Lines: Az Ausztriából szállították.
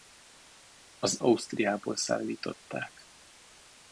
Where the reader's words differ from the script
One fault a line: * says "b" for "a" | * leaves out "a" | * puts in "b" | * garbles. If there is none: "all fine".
all fine